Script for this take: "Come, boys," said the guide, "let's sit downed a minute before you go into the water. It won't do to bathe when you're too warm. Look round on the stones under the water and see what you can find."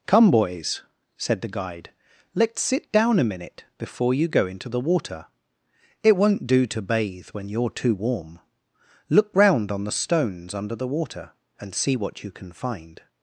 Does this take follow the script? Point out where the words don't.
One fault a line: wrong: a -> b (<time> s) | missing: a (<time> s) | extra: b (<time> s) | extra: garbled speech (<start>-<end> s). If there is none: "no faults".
wrong: downed -> down (2.9 s)